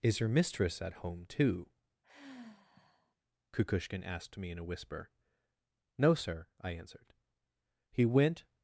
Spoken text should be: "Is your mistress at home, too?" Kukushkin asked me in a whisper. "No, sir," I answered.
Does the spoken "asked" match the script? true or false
true